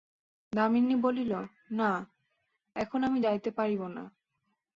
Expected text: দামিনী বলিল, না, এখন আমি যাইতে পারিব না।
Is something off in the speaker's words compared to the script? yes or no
no